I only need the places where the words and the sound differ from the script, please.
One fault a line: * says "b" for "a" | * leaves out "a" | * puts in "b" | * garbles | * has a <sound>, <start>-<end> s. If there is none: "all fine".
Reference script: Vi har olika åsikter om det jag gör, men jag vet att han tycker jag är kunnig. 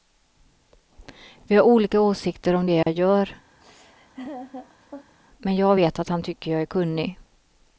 * has a dropout, 2.8-2.9 s
* has a laugh, 3.6-5.1 s